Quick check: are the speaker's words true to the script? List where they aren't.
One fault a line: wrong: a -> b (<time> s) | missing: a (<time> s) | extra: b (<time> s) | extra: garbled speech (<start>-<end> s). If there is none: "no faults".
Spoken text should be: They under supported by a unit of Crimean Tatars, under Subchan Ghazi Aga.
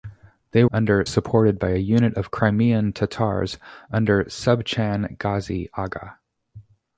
no faults